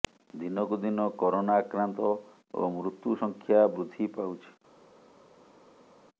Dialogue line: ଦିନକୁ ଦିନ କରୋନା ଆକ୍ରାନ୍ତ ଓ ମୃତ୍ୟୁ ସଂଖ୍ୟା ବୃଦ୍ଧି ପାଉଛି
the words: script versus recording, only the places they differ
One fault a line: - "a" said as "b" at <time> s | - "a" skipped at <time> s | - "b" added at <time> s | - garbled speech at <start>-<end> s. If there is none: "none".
none